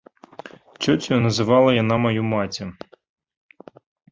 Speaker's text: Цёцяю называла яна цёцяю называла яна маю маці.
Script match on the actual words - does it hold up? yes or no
no